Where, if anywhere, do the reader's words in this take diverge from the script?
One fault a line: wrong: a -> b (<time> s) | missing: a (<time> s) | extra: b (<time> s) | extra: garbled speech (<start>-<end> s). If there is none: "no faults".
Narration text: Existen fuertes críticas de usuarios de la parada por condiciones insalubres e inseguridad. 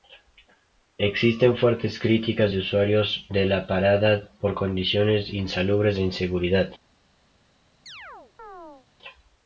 no faults